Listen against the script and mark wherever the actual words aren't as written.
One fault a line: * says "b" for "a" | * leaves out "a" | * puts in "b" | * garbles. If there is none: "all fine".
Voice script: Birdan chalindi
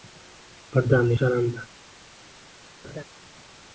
all fine